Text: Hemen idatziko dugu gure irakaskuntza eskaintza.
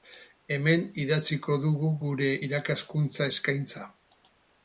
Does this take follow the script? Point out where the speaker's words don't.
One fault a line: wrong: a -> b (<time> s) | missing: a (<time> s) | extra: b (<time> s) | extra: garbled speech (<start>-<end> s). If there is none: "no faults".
no faults